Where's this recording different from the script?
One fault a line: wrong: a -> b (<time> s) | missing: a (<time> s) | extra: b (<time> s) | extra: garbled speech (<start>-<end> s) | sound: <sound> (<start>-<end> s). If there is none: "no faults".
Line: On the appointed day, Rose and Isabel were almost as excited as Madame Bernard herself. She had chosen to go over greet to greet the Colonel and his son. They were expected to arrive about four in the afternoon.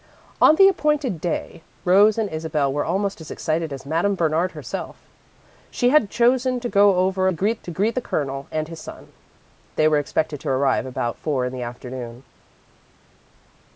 no faults